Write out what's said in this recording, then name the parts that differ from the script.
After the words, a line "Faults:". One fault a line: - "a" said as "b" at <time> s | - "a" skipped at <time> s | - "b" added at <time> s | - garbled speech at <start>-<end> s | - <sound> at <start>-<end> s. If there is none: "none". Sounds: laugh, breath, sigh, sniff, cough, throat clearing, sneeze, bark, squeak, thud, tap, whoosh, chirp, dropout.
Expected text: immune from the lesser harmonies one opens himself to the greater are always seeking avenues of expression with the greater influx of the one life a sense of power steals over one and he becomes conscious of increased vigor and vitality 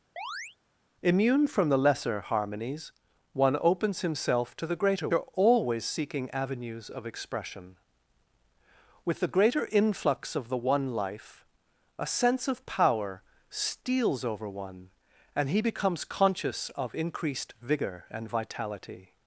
immune from the lesser harmonies one opens himself to the greater are always seeking avenues of expression with the greater influx of the one life a sense of power steals over one and he becomes conscious of increased vigor and vitality
Faults:
- chirp at 0.2-0.6 s